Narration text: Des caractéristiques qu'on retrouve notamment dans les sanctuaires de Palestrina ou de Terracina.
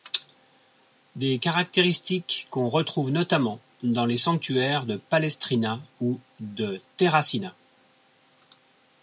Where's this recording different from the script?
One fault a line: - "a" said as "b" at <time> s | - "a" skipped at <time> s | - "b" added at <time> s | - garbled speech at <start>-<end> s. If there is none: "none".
none